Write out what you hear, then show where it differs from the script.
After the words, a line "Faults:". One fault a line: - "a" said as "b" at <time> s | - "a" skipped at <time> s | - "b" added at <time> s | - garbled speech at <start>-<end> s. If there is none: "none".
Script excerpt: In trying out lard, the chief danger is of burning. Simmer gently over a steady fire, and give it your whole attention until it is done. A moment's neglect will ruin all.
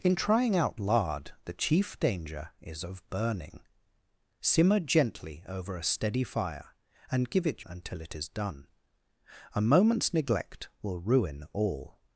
In trying out lard, the chief danger is of burning. Simmer gently over a steady fire, and give it until it is done. A moment's neglect will ruin all.
Faults:
- "your whole attention" skipped at 7.6 s